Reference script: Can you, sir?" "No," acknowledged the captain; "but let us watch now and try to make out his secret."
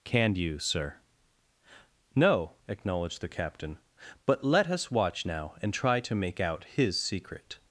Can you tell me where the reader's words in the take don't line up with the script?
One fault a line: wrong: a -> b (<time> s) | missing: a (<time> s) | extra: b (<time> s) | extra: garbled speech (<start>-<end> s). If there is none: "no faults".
no faults